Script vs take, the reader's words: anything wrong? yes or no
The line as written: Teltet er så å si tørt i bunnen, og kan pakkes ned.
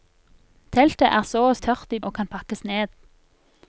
yes